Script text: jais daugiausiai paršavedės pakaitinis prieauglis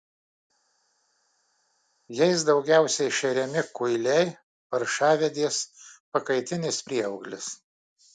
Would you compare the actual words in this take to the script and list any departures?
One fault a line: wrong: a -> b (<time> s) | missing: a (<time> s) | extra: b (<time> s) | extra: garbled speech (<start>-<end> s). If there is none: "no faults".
extra: šeriami kuiliai (3.2 s)